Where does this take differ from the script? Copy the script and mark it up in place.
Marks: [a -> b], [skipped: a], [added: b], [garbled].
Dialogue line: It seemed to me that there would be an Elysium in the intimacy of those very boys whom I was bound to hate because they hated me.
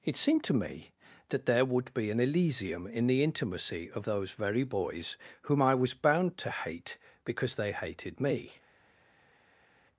It seemed to me that there would be an Elysium in the intimacy of those very boys whom I was bound to hate because they hated me.